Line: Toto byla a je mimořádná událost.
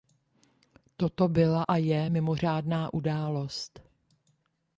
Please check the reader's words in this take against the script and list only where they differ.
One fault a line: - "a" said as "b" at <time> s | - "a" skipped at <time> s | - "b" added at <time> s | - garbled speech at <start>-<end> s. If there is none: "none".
none